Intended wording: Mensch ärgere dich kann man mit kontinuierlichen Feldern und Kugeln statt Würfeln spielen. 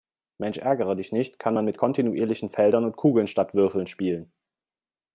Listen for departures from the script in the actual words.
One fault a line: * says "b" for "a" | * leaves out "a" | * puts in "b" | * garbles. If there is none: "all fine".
* puts in "nicht"